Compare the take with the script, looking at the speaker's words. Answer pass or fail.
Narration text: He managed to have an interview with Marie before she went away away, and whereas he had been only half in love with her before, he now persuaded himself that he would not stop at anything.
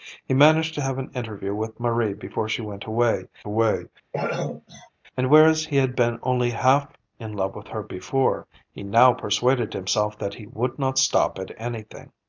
pass